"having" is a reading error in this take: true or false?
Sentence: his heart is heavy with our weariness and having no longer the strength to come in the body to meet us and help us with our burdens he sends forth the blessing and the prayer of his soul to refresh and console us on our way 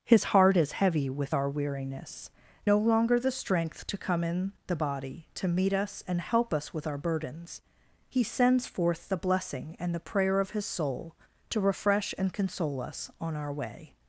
true